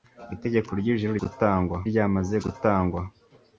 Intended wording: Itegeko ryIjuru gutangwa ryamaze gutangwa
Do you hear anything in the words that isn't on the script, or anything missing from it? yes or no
no